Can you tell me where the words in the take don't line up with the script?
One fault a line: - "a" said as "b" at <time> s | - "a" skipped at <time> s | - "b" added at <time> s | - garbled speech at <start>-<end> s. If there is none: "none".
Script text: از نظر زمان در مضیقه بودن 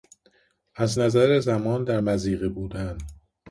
none